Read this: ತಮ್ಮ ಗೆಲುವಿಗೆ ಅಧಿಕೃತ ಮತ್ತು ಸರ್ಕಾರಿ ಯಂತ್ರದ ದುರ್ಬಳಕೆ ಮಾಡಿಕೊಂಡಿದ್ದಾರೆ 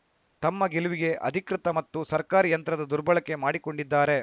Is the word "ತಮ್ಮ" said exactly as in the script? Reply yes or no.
yes